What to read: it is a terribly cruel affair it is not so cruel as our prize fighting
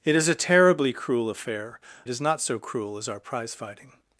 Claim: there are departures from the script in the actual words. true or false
false